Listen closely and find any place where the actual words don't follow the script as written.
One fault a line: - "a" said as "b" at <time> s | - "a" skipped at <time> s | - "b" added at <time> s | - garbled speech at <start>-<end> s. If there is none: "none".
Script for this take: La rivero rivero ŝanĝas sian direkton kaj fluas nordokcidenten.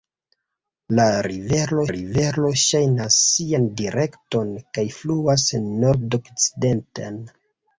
none